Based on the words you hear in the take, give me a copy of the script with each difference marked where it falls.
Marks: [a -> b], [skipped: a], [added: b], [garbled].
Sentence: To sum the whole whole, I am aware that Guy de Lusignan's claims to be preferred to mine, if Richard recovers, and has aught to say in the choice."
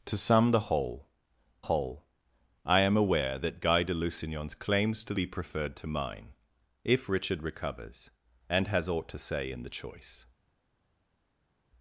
To sum the whole whole, I am aware that Guy de Lusignan's claims to be preferred to mine, if Richard recovers, and has aught to say in the choice."